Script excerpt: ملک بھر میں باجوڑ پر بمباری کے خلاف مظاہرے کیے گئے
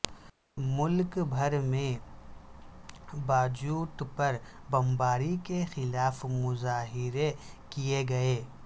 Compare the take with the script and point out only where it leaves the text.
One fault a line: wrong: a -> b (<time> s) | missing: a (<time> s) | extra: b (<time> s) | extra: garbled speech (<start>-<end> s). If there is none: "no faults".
no faults